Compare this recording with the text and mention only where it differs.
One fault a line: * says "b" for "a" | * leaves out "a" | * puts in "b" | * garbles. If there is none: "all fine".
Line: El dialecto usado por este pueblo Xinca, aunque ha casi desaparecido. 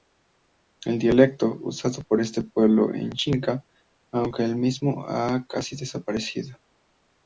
* puts in "es"
* puts in "el mismo"